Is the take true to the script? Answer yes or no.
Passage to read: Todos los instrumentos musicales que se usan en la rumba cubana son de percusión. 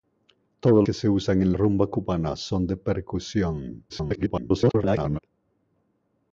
no